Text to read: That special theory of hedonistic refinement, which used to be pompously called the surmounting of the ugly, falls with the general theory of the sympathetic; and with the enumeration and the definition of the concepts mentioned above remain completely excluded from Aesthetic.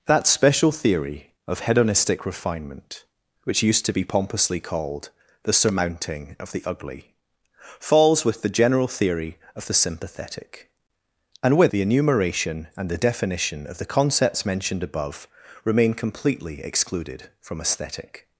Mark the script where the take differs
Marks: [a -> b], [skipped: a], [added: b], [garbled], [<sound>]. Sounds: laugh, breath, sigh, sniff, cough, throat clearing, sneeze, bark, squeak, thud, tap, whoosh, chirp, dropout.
That special theory of hedonistic refinement, which used to be pompously called the surmounting of the ugly, falls with the general theory of the sympathetic; and with the enumeration and the definition of the concepts mentioned above remain completely excluded from Aesthetic.